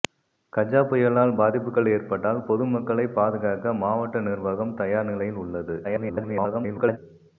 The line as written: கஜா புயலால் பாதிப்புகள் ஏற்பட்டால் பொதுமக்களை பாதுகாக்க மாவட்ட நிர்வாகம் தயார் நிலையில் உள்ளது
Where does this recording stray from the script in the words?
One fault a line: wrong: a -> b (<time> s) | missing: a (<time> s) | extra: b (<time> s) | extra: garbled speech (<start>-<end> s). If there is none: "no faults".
extra: garbled speech (5.8-7.0 s)